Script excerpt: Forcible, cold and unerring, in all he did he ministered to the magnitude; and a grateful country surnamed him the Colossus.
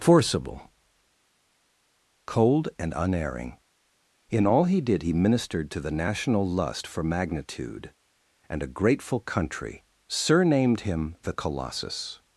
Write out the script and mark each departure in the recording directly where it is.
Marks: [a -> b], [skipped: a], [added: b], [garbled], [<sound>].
Forcible, cold and unerring, in all he did he ministered to the [added: national lust for] magnitude; and a grateful country surnamed him the Colossus.